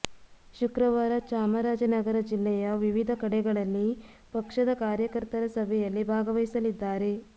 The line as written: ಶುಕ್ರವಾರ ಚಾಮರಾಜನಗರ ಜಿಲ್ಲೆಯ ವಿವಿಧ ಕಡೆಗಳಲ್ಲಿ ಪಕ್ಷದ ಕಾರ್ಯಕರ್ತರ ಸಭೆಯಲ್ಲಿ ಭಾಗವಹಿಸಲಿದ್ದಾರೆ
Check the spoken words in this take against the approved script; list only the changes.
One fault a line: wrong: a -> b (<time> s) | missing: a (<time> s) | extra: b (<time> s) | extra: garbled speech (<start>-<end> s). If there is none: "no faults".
no faults